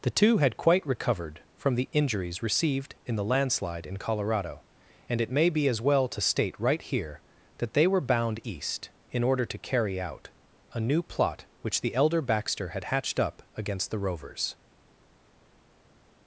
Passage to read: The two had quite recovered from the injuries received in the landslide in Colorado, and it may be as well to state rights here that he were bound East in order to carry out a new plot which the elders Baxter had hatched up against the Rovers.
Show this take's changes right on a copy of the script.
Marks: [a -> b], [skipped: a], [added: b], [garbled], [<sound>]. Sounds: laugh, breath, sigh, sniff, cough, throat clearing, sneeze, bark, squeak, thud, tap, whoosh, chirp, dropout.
The two had quite recovered from the injuries received in the landslide in Colorado, and it may be as well to state [rights -> right] here that [he -> they] were bound East in order to carry out a new plot which the [elders -> elder] Baxter had hatched up against the Rovers.